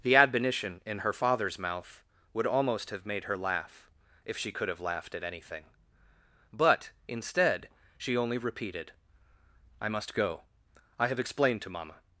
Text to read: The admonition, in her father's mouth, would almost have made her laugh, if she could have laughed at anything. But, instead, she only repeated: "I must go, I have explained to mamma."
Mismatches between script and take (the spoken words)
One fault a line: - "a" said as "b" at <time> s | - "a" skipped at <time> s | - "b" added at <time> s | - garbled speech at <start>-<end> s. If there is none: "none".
none